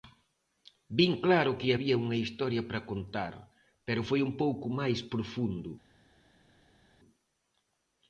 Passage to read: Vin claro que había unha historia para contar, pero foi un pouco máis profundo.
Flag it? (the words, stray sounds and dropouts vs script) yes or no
no